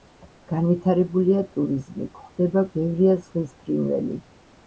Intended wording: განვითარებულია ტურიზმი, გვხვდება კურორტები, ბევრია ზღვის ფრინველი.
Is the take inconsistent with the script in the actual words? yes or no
yes